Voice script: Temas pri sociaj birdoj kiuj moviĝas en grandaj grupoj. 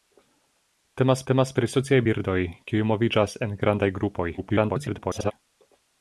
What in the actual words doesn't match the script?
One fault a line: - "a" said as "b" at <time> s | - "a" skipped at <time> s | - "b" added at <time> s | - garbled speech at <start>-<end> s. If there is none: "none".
- "temas" added at 1.3 s
- garbled speech at 4.4-5.3 s